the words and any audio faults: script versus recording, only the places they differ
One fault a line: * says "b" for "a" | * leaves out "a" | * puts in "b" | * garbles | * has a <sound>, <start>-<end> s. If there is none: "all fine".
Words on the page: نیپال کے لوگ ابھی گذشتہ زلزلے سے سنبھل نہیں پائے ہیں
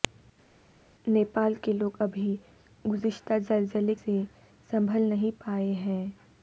all fine